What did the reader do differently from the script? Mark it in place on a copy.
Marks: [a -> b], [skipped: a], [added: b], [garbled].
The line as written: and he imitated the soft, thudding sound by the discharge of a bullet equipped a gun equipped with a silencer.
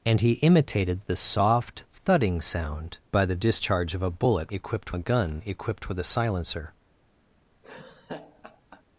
and he imitated the soft, thudding sound by the discharge of a bullet equipped a gun equipped with a silencer.